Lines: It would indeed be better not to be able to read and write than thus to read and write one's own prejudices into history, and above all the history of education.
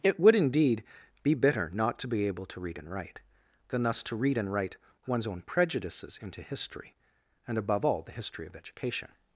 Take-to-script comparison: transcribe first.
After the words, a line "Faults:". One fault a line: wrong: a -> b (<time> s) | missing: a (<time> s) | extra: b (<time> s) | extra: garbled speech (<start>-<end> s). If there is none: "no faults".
It would indeed be bitter not to be able to read and write than thus to read and write one's own prejudices into history, and above all the history of education.
Faults:
wrong: better -> bitter (1.3 s)